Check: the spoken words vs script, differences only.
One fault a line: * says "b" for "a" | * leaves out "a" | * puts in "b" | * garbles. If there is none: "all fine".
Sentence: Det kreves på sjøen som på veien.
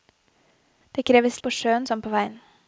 all fine